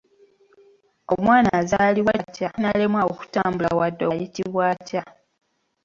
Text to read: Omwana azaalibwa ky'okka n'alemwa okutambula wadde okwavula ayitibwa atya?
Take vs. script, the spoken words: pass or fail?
fail